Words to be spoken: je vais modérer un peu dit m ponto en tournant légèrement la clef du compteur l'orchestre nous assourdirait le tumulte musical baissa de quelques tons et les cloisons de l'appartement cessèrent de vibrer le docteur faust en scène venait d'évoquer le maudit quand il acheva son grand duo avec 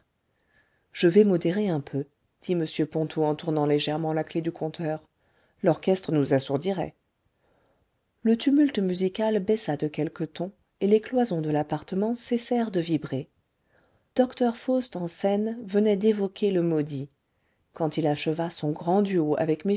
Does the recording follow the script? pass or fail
fail